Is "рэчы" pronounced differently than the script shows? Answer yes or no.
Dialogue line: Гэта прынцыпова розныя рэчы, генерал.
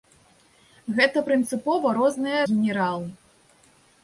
yes